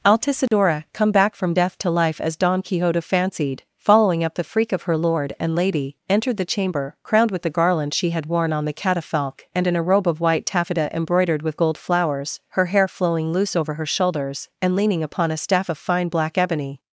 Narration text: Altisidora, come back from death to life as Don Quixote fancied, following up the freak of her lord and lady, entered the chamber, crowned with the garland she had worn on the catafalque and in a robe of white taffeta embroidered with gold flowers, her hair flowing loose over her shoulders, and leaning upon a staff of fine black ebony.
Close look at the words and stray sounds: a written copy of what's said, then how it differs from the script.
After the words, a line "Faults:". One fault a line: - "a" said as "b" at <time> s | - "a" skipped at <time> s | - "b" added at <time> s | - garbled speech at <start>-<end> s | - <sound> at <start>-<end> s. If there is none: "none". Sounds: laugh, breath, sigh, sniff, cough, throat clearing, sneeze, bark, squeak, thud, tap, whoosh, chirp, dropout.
Altisidora, come back from death to life as Don Quixote fancied, following up the freak of her lord and lady, entered the chamber, crowned with the garland she had worn on the catafalque and in a robe of white taffeta embroidered with gold flowers, her hair flowing loose over her shoulders, and leaning upon a staff of fine black ebony.
Faults:
- dropout at 0.5-0.5 s